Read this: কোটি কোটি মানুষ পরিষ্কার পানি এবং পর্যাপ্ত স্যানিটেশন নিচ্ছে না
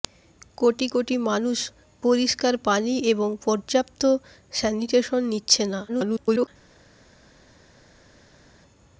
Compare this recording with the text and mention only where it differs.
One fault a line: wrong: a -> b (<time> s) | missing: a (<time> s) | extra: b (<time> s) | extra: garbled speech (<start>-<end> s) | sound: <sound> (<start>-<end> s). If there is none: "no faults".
extra: garbled speech (5.9-6.5 s)